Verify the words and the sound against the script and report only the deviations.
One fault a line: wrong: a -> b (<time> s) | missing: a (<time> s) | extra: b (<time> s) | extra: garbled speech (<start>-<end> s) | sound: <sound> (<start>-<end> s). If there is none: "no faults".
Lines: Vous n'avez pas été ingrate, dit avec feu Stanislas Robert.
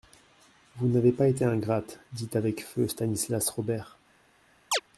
sound: chirp (4.7-4.8 s)